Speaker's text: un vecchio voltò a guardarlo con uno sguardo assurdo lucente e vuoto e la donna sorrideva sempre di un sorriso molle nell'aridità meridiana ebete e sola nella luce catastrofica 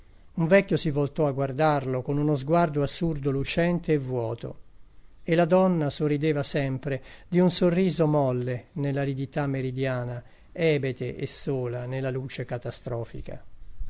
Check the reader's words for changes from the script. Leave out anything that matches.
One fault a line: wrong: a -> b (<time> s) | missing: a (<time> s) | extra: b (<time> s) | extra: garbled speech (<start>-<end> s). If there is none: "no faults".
extra: si (0.7 s)